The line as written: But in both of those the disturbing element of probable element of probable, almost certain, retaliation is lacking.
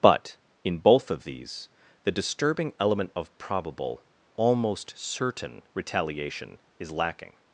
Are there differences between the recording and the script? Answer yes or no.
yes